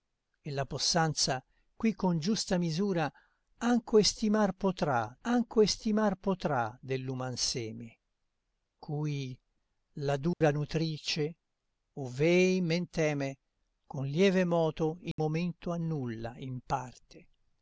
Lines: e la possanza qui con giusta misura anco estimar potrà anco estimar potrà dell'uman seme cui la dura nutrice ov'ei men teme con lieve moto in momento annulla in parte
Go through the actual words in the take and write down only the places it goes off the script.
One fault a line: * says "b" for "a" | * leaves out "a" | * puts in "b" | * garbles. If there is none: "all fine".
all fine